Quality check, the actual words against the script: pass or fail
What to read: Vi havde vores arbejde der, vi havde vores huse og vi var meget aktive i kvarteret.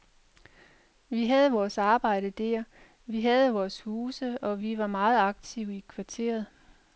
pass